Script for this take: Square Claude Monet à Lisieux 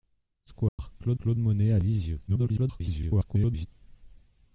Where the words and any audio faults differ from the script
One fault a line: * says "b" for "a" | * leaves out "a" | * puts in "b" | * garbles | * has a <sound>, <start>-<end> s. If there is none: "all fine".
* has a dropout, 0.7-0.8 s
* puts in "Claude"
* garbles